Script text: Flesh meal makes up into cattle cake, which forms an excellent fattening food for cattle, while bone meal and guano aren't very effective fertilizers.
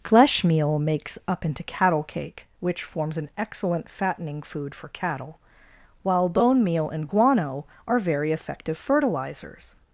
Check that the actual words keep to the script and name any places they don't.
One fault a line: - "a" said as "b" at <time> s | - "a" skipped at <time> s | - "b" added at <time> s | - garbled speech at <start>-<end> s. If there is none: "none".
- "aren't" said as "are" at 7.9 s